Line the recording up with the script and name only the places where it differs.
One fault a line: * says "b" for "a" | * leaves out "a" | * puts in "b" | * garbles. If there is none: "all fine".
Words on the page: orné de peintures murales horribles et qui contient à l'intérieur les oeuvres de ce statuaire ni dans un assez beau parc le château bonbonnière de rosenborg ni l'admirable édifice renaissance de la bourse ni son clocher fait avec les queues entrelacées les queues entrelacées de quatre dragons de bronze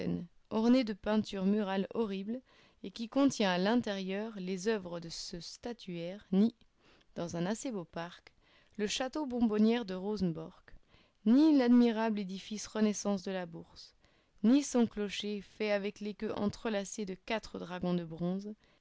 * leaves out "les queues entrelacées"